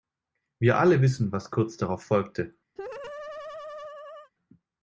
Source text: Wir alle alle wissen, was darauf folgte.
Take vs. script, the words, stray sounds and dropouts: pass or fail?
fail